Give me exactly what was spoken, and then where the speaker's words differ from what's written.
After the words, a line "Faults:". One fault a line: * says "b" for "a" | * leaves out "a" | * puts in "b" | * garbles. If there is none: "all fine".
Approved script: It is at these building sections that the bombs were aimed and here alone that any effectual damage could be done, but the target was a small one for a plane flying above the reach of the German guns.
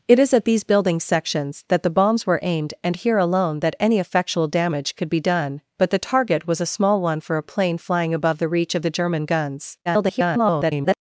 It is at these building sections that the bombs were aimed and here alone that any effectual damage could be done, but the target was a small one for a plane flying above the reach of the German guns. [garbled]
Faults:
* garbles